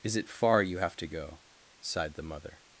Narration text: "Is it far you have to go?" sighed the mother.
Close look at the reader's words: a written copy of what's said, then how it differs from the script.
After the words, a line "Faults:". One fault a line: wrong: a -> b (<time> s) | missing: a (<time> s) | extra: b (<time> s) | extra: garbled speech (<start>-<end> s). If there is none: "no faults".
"Is it far you have to go?" sighed the mother.
Faults:
no faults